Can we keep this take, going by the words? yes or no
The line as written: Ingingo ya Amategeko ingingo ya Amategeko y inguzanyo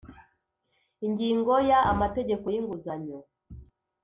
no